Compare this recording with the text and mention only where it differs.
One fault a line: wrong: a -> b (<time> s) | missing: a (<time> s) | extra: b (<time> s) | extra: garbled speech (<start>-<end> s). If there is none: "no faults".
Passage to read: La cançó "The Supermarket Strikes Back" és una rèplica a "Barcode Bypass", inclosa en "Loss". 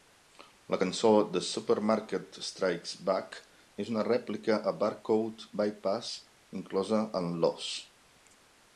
no faults